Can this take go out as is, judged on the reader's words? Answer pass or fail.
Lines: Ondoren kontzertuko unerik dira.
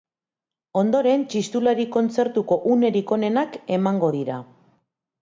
fail